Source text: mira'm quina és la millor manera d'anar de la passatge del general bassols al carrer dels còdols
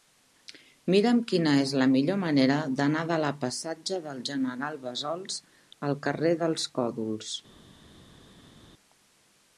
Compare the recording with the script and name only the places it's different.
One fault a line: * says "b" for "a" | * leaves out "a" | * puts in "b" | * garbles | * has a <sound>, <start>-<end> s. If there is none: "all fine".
all fine